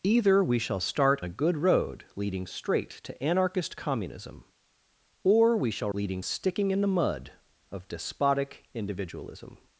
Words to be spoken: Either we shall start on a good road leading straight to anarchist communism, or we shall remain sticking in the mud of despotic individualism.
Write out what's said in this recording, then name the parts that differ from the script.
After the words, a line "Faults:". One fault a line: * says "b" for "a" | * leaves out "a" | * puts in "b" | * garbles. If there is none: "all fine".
Either we shall start a good road leading straight to anarchist communism, or we shall leading sticking in the mud of despotic individualism.
Faults:
* leaves out "on"
* says "leading" for "remain"